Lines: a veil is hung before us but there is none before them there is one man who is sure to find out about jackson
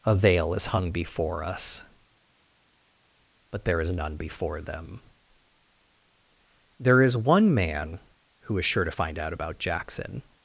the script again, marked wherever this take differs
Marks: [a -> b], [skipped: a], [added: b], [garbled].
a veil is hung before us but there is none before them there is one man who is sure to find out about jackson